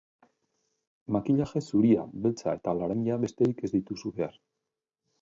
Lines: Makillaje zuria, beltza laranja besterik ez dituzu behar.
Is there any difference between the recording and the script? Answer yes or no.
yes